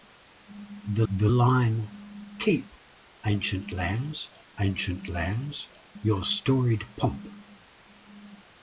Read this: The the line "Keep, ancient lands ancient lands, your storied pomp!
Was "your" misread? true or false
false